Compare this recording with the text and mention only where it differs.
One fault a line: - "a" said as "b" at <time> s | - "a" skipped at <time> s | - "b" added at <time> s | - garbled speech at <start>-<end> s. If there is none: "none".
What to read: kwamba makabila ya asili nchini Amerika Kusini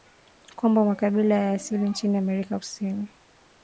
none